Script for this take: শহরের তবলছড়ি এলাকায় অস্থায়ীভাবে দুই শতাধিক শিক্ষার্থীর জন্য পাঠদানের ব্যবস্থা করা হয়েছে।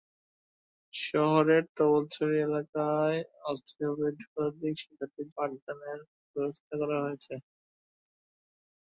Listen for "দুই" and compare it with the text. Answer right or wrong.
wrong